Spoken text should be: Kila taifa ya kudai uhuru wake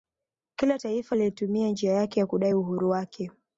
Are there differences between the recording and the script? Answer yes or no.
yes